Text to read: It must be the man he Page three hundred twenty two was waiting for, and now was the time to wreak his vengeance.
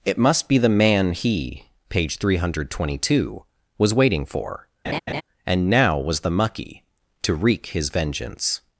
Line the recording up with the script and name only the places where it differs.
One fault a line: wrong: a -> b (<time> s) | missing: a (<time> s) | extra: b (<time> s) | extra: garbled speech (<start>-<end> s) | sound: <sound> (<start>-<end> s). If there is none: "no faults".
sound: laugh (4.8-5.2 s)
wrong: time -> mucky (6.3 s)